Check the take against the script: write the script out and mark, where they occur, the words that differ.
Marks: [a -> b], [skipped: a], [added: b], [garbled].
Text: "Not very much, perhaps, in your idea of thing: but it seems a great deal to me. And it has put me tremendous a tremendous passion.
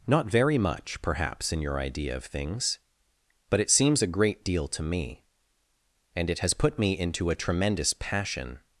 "Not very much, perhaps, in your idea of [thing: -> things] but it seems a great deal to me. And it has put me [tremendous -> into] a tremendous passion.